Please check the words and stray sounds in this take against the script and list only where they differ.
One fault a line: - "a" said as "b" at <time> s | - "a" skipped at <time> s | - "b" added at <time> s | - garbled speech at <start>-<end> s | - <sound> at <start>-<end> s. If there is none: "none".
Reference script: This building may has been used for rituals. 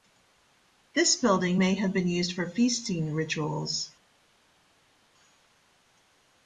- "has" said as "have" at 1.8 s
- "feasting" added at 2.5 s